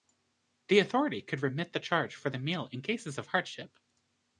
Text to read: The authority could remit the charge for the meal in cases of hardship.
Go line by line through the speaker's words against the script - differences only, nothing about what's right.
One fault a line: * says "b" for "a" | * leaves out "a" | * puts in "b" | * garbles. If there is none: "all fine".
all fine